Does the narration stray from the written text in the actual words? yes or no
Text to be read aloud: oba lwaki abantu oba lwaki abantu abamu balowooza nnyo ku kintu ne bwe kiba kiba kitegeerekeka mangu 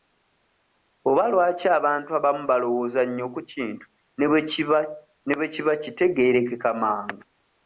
yes